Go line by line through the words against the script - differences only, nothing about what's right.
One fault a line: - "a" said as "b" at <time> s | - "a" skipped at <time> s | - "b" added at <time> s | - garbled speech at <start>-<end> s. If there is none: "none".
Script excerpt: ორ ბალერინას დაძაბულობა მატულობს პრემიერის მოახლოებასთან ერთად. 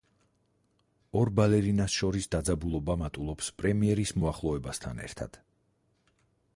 - "შორის" added at 2.0 s